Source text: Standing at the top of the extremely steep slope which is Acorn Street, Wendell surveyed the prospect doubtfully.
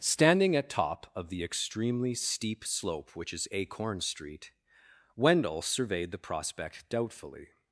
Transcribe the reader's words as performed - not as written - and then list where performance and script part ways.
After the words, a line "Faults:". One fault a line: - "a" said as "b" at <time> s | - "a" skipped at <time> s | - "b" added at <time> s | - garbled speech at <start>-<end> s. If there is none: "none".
Standing at top of the extremely steep slope which is Acorn Street, Wendell surveyed the prospect doubtfully.
Faults:
- "the" skipped at 0.7 s